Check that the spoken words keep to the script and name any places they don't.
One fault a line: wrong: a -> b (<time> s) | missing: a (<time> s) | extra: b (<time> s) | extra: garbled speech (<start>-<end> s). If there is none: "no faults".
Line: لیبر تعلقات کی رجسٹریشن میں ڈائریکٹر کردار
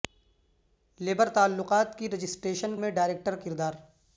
no faults